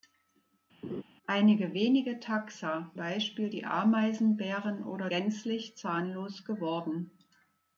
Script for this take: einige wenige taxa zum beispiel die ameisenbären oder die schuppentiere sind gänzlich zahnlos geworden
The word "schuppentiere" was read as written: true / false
false